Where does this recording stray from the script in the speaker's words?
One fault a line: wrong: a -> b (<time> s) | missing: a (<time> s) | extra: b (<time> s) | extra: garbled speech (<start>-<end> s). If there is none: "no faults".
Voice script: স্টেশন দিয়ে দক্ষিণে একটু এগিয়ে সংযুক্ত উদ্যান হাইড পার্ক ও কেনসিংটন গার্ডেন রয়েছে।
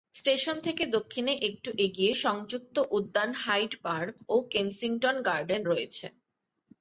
wrong: দিয়ে -> থেকে (0.6 s)